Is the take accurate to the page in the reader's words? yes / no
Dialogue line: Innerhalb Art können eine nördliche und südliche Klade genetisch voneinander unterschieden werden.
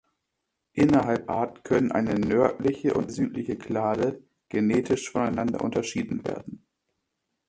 yes